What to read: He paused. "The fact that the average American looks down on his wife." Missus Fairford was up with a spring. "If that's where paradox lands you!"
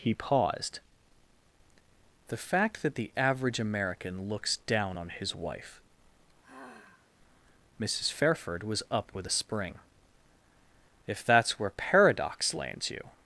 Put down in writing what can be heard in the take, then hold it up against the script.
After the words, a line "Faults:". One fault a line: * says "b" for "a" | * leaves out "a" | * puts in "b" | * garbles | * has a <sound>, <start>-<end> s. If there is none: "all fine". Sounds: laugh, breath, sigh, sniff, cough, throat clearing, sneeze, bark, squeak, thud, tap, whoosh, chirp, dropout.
He paused. "The fact that the average American looks down on his wife." Missus Fairford was up with a spring. "If that's where paradox lands you!"
Faults:
* has a sigh, 6.4-7.1 s